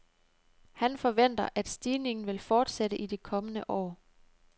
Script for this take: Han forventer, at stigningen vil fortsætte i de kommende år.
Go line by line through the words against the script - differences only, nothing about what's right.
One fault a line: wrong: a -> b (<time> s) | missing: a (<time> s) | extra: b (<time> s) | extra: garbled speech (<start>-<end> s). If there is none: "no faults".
no faults